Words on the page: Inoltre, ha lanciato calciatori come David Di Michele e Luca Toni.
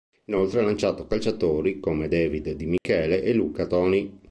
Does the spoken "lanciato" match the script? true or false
true